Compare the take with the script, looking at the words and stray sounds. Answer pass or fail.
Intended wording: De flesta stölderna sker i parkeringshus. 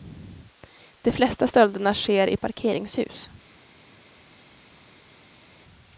pass